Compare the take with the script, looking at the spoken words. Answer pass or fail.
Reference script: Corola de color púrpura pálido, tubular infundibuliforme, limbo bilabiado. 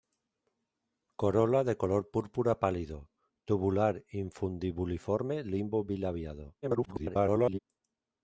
fail